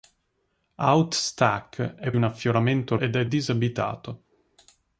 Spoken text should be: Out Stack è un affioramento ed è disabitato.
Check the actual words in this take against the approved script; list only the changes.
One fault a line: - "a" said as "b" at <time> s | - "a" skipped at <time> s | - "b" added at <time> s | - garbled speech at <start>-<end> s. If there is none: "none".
none